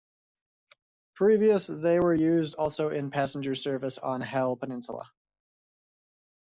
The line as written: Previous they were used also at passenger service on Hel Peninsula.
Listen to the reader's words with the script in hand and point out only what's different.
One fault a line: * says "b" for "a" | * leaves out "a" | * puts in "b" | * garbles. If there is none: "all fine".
* says "in" for "at"